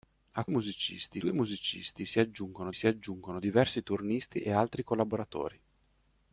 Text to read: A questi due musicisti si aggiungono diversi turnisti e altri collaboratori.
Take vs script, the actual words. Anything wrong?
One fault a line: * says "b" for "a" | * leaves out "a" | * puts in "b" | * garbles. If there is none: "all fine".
* says "musicisti" for "questi"
* puts in "si aggiungono"